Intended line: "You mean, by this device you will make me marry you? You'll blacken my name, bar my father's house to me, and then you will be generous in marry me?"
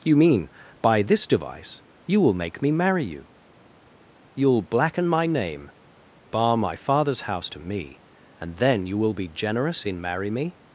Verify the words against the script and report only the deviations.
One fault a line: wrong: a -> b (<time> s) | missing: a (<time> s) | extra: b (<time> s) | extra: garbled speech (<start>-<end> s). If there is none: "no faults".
no faults